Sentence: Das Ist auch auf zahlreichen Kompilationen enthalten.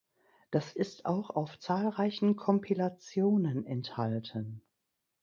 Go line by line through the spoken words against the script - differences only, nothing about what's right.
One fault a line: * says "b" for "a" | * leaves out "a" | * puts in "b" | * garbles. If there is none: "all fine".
all fine